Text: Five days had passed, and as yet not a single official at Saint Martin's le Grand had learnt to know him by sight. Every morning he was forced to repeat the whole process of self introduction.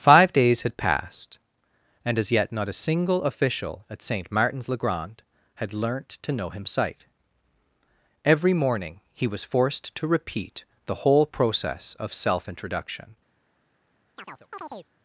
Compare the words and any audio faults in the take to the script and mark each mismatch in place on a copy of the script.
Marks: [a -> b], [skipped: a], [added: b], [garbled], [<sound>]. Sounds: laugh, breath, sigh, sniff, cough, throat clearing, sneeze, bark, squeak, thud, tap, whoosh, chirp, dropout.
Five days had passed, and as yet not a single official at Saint Martin's le Grand had learnt to know him [skipped: by] sight. Every morning he was forced to repeat the whole process of self introduction. [chirp]